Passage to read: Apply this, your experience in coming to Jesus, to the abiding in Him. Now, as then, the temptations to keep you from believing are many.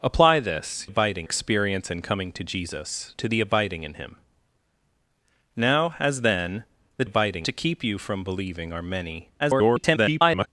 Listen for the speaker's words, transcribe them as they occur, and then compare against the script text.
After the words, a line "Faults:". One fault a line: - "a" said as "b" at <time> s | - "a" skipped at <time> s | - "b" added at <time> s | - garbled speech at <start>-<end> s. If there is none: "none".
Apply this, abiding experience in coming to Jesus, to the abiding in Him. Now, as then, the abiding to keep you from believing are many. [garbled]
Faults:
- "your" said as "abiding" at 0.8 s
- "temptations" said as "abiding" at 7.0 s
- garbled speech at 9.4-10.5 s